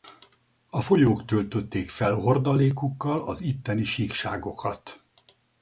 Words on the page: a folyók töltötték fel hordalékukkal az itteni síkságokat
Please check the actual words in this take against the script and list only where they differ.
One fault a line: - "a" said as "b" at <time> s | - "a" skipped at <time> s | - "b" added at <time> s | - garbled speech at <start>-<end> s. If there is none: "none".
none